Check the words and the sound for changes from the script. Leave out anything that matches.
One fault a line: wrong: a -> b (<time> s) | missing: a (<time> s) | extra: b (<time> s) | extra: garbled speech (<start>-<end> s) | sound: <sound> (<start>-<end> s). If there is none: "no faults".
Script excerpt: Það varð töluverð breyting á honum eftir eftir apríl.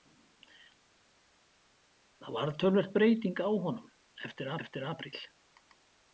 no faults